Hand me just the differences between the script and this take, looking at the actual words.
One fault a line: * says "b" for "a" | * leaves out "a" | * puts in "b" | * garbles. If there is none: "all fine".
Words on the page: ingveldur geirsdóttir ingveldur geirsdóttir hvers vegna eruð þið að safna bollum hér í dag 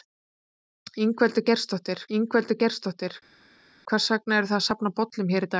all fine